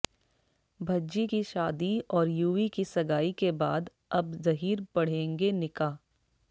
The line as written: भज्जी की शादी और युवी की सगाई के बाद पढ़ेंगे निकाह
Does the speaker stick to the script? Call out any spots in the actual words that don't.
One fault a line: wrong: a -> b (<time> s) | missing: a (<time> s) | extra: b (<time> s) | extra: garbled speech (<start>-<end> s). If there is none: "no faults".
extra: अब जहीर (4.1 s)